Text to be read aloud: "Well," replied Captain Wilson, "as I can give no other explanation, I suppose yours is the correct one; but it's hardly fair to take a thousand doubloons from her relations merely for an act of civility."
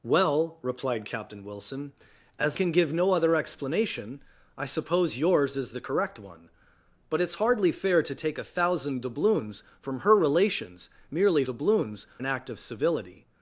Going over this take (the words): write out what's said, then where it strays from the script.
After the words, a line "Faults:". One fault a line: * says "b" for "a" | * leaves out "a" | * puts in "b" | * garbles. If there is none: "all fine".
"Well," replied Captain Wilson, "as can give no other explanation, I suppose yours is the correct one; but it's hardly fair to take a thousand doubloons from her relations merely doubloons an act of civility."
Faults:
* leaves out "I"
* says "doubloons" for "for"